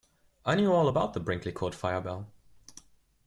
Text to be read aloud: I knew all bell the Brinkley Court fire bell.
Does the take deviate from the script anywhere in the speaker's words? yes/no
yes